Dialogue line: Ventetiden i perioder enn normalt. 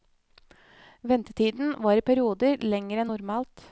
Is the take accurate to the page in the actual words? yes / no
no